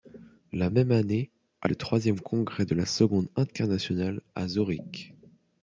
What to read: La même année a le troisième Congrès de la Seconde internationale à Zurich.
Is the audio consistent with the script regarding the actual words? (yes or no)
yes